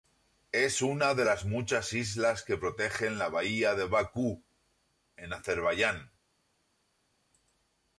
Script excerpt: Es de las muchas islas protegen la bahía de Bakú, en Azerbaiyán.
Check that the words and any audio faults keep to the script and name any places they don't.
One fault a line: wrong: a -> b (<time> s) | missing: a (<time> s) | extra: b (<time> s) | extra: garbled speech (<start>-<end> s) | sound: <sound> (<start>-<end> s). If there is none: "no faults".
extra: una (0.8 s)
extra: que (2.4 s)